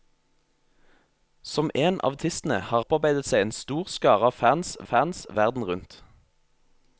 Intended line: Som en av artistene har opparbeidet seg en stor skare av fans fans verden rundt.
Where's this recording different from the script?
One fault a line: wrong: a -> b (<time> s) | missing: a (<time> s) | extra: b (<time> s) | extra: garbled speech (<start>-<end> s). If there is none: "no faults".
no faults